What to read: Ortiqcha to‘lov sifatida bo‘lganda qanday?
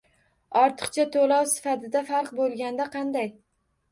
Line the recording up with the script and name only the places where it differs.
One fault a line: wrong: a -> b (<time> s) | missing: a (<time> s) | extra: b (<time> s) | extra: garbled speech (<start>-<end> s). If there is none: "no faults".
extra: farq (2.1 s)